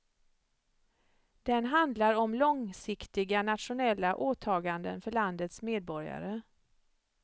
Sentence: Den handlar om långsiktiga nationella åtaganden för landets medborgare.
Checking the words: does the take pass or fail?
pass